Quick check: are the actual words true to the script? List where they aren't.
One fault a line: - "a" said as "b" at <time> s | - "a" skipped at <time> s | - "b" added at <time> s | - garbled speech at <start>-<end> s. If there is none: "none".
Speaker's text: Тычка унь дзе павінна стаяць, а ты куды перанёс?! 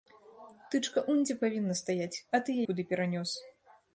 none